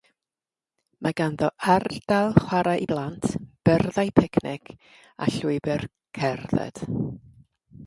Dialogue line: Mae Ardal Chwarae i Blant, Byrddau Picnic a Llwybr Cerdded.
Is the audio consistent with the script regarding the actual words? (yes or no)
no